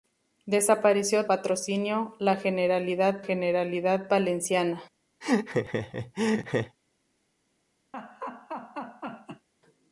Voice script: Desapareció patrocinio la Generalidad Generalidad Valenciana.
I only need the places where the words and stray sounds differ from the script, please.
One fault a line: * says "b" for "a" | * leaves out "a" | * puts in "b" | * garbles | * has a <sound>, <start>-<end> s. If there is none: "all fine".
* has a laugh, 5.2-6.8 s
* has a laugh, 7.9-9.5 s